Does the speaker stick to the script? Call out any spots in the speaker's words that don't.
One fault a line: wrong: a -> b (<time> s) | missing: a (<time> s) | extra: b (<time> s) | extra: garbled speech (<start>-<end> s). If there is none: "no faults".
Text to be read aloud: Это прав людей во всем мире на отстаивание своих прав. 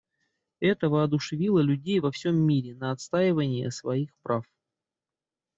wrong: прав -> воодушевило (0.9 s)